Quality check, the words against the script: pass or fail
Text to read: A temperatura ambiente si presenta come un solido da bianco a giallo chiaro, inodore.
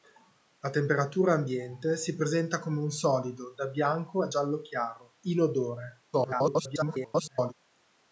fail